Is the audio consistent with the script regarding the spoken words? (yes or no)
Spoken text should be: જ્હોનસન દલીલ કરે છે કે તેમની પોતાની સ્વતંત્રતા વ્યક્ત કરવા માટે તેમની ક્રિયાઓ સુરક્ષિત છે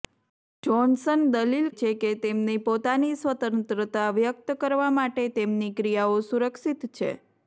no